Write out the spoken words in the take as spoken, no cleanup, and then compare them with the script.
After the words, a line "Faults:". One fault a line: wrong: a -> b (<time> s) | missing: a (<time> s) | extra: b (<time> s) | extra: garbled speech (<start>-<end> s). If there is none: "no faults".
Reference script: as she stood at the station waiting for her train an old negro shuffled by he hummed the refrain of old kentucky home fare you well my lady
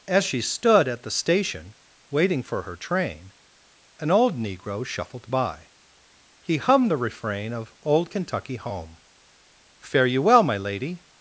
as she stood at the station waiting for her train an old negro shuffled by he hummed the refrain of old kentucky home fare you well my lady
Faults:
no faults